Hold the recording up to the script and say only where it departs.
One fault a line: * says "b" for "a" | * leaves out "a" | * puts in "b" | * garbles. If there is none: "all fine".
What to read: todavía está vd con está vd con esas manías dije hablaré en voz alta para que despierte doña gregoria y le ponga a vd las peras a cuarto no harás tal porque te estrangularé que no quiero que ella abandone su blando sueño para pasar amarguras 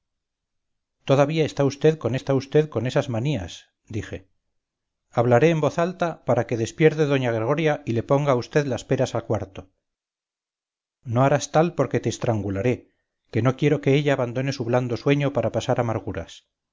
all fine